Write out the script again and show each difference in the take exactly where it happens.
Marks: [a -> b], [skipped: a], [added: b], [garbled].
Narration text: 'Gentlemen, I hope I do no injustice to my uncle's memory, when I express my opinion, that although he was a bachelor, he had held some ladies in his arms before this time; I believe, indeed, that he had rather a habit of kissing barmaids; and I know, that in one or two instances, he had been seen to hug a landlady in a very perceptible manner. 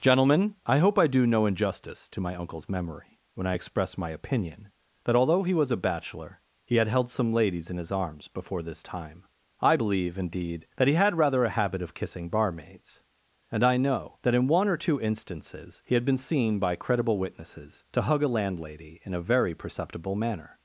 'Gentlemen, I hope I do no injustice to my uncle's memory, when I express my opinion, that although he was a bachelor, he had held some ladies in his arms before this time; I believe, indeed, that he had rather a habit of kissing barmaids; and I know, that in one or two instances, he had been seen [added: by credible witnesses] to hug a landlady in a very perceptible manner.